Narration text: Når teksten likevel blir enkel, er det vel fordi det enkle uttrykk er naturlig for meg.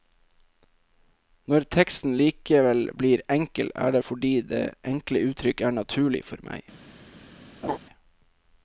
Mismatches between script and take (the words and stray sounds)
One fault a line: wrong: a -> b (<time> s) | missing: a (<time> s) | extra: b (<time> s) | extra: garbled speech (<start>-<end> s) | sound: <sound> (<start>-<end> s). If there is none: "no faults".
missing: vel (4.0 s)
sound: laugh (7.6-7.8 s)